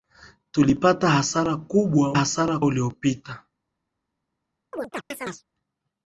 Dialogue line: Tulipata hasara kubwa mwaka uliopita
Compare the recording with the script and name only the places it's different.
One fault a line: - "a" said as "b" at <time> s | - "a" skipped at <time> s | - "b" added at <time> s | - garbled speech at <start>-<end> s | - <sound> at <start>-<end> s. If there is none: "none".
- "mwaka" said as "hasara" at 2.1 s
- chirp at 4.7-5.4 s